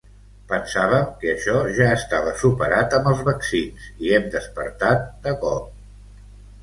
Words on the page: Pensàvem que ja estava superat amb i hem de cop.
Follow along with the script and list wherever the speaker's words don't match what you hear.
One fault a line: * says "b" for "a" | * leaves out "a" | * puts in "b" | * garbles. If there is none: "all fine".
* puts in "això"
* puts in "els vaccins"
* puts in "despertat"